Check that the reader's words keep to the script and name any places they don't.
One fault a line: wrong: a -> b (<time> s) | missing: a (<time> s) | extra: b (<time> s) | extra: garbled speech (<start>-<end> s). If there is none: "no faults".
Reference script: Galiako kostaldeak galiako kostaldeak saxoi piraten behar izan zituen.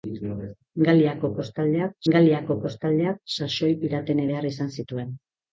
no faults